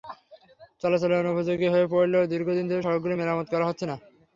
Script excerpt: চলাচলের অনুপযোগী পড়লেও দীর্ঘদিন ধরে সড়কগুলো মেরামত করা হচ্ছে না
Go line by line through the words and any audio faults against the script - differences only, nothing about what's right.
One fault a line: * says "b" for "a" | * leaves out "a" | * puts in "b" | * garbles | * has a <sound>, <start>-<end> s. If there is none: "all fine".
* puts in "হয়ে"